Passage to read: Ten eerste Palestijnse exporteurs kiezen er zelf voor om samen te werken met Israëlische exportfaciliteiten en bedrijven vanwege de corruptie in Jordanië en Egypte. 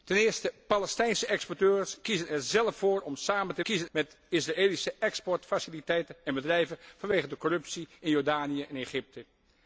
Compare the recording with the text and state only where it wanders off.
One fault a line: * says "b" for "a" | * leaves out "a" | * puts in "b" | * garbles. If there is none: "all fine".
* says "kiezen" for "werken"